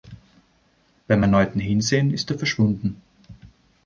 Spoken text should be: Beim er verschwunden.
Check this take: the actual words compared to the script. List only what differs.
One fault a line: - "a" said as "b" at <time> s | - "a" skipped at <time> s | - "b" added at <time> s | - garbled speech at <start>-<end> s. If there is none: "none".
- "erneuten Hinsehen ist" added at 1.2 s